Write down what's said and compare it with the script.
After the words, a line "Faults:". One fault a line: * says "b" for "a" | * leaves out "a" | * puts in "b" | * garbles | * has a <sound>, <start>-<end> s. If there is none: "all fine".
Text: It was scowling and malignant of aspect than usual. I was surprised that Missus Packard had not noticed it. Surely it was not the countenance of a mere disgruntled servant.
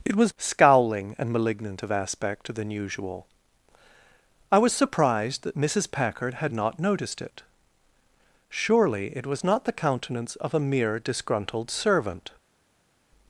It was scowling and malignant of aspect than usual. I was surprised that Missus Packard had not noticed it. Surely it was not the countenance of a mere disgruntled servant.
Faults:
all fine